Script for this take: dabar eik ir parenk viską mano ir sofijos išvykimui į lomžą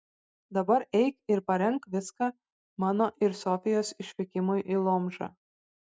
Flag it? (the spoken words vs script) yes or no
no